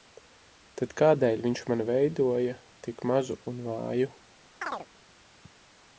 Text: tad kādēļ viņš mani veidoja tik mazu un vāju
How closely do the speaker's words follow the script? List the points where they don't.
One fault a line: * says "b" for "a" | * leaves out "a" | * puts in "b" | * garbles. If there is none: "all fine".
all fine